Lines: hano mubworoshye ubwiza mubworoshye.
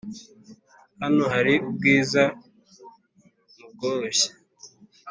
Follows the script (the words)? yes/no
no